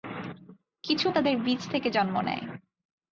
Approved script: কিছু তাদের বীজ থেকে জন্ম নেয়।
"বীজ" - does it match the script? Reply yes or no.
yes